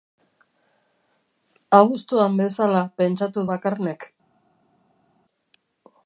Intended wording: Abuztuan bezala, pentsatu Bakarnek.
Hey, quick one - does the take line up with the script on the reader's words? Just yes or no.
yes